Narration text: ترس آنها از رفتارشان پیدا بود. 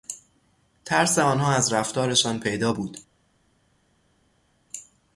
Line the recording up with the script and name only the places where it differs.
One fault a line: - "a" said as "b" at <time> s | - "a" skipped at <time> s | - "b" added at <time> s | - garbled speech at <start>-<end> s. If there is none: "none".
none